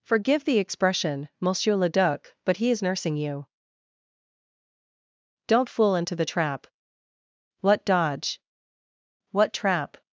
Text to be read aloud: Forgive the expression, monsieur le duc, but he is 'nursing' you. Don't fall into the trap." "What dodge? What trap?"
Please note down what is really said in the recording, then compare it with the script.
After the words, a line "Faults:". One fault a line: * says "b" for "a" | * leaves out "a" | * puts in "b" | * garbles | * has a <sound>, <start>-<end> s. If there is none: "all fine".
Forgive the expression, monsieur le duc, but he is 'nursing' you. Don't fool into the trap." "What dodge? What trap?"
Faults:
* says "fool" for "fall"